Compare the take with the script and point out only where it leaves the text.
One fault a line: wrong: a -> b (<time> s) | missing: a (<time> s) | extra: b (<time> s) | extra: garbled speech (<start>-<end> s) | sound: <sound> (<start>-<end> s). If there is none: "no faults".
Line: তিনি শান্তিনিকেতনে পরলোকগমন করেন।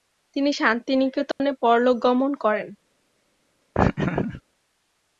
sound: dropout (1.3-1.4 s)
sound: laugh (3.7-4.4 s)